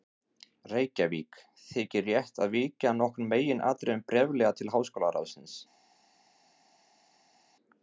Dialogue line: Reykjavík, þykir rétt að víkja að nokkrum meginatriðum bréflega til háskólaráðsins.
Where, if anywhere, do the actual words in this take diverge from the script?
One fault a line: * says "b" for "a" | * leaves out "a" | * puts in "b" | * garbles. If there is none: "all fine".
all fine